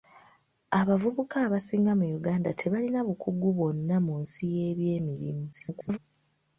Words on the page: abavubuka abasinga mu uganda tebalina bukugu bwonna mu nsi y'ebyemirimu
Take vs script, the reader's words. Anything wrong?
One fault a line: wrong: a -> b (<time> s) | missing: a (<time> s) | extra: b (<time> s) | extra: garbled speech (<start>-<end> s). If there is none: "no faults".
extra: garbled speech (5.5-6.0 s)